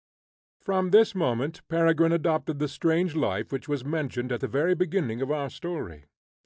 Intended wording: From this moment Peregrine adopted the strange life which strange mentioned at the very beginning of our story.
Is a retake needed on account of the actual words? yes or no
yes